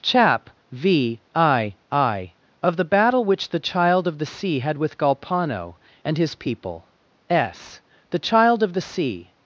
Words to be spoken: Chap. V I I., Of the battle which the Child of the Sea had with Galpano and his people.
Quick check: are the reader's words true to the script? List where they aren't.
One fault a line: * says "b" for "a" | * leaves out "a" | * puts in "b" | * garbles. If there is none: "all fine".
* puts in "S the Child of the Sea"